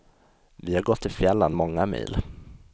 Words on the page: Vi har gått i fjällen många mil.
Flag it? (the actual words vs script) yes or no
no